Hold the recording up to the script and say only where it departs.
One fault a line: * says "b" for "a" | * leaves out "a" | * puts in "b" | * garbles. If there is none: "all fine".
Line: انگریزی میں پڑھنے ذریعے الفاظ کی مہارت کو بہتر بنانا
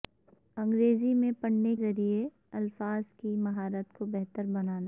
all fine